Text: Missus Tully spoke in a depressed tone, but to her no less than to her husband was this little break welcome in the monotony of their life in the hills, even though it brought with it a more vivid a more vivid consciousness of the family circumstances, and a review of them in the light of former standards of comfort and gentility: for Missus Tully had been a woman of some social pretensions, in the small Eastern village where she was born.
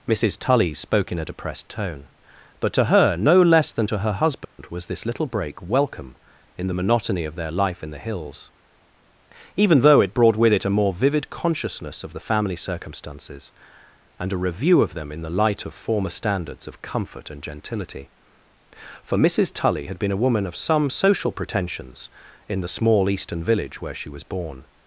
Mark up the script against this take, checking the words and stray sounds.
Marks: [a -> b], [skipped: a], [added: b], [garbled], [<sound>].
Missus Tully spoke in a depressed tone, but to her no less than to her husband [dropout] was this little break welcome in the monotony of their life in the hills, even though it brought with it a more vivid [skipped: a more vivid] consciousness of the family circumstances, and a review of them in the light of former standards of comfort and gentility: for Missus Tully had been a woman of some social pretensions, in the small Eastern village where she was born.